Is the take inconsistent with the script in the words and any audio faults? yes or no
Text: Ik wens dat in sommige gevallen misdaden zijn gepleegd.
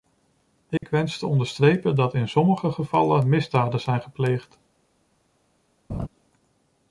yes